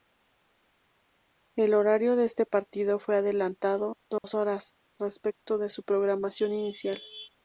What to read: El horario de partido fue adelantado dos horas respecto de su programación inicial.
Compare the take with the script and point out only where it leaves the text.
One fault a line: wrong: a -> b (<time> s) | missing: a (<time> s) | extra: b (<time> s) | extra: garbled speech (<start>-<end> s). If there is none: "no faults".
extra: este (2.2 s)